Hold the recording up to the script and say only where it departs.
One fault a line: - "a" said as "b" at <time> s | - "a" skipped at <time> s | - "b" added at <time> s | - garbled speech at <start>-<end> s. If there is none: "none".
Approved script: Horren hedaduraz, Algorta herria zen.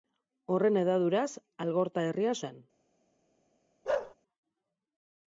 none